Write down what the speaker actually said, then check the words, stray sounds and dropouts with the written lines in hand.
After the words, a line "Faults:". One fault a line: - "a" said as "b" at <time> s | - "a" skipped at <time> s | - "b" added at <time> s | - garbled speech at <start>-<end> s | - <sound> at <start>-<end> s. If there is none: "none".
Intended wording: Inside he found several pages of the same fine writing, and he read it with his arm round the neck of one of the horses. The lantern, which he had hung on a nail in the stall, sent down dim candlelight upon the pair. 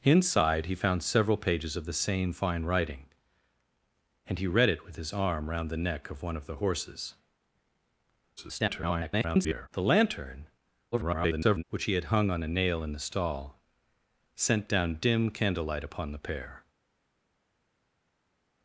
Inside he found several pages of the same fine writing, and he read it with his arm round the neck of one of the horses. [garbled] The lantern, [garbled] which he had hung on a nail in the stall, sent down dim candlelight upon the pair.
Faults:
- garbled speech at 8.4-9.7 s
- garbled speech at 10.9-11.6 s